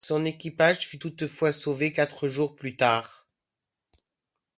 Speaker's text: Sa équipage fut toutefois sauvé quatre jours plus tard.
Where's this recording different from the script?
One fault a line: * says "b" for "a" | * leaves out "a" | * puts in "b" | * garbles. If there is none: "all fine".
* says "Son" for "Sa"